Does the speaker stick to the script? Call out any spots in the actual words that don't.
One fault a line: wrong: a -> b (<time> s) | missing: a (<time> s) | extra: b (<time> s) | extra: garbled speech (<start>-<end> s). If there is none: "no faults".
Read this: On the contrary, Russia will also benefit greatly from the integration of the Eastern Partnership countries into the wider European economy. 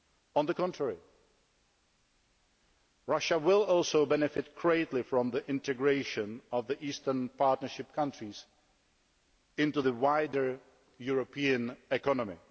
no faults